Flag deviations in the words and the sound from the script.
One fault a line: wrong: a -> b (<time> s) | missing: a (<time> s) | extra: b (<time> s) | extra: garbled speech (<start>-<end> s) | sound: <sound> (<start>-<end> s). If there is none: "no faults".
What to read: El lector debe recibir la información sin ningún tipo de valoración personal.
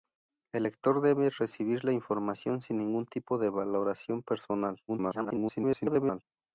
extra: garbled speech (4.9-6.2 s)